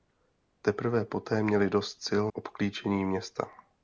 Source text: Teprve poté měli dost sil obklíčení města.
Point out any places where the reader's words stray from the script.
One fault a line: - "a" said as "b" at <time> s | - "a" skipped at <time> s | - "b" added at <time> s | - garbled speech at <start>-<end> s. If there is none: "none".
none